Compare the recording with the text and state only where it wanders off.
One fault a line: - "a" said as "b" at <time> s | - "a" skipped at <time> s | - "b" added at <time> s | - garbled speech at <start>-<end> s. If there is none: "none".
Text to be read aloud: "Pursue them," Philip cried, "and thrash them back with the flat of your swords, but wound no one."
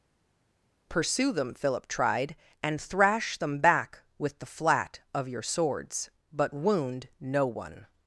- "cried" said as "tried" at 1.9 s